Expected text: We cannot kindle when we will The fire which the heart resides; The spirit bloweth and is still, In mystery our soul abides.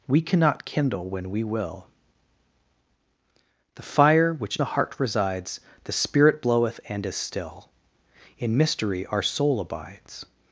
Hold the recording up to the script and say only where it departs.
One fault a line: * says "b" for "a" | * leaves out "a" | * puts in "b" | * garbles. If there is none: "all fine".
all fine